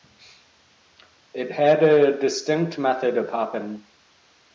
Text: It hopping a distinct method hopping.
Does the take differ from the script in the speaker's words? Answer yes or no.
yes